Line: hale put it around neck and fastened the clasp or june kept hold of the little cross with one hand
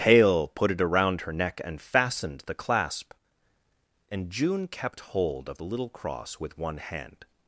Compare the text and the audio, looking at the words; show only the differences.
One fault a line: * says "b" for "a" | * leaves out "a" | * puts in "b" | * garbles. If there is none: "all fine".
* puts in "her"
* says "and" for "or"